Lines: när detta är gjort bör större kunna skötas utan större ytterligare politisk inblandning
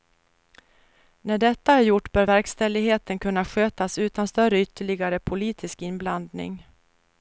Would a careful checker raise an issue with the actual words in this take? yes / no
yes